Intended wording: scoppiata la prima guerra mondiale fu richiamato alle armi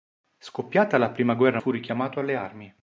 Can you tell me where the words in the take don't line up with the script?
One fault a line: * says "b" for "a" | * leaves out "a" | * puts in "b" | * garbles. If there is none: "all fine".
* leaves out "mondiale"